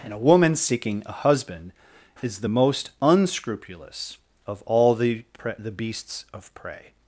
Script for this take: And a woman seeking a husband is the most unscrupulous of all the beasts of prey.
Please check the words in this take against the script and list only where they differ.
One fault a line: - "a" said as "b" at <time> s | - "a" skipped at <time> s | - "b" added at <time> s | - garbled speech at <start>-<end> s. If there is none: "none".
- "pre the" added at 5.4 s